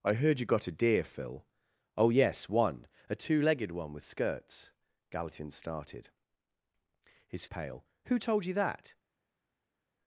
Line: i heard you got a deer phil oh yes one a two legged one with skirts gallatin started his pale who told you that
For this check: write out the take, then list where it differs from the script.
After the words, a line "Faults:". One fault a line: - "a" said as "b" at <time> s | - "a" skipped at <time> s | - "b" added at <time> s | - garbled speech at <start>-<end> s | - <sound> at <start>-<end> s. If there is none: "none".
i heard you got a deer phil oh yes one a two legged one with skirts gallatin started his pale who told you that
Faults:
none